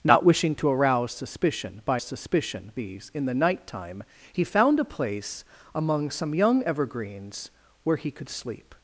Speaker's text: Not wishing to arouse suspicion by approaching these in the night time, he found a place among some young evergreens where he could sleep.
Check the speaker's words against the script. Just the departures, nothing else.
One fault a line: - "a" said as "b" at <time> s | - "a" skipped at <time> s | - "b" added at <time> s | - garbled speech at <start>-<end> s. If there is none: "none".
- "approaching" said as "suspicion" at 2.0 s